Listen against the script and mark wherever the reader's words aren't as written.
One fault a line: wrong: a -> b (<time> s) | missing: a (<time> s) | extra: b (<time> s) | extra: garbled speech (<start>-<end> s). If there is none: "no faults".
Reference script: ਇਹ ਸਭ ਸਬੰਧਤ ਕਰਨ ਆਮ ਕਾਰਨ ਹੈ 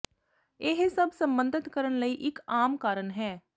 extra: ਲਈ ਇੱਕ (2.0 s)